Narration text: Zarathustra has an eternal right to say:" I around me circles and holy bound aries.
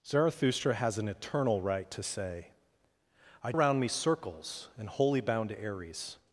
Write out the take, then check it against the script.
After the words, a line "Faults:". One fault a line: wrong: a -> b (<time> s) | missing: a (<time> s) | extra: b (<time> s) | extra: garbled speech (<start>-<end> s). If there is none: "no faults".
Zarathustra has an eternal right to say:" I around me circles and holy bound aries.
Faults:
no faults